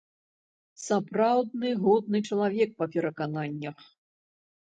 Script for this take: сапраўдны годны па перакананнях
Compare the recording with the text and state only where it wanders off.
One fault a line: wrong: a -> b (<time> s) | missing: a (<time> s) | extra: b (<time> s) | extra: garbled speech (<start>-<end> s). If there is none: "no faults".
extra: чалавек (2.3 s)